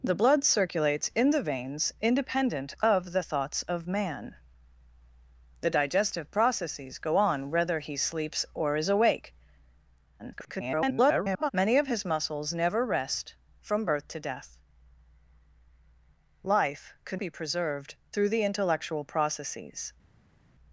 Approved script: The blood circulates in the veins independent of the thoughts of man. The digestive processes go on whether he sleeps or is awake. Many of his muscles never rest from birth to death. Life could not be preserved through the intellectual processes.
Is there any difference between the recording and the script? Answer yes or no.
yes